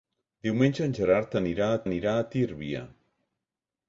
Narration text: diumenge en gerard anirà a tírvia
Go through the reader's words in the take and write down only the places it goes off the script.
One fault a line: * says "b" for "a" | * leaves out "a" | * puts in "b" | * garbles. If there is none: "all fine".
* puts in "anirà a"